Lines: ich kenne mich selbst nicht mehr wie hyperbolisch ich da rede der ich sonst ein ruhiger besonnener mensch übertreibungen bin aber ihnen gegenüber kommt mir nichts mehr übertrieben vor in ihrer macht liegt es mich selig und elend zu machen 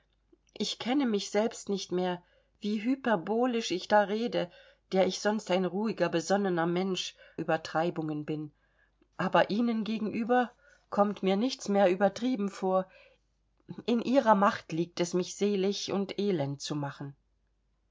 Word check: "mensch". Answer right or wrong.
right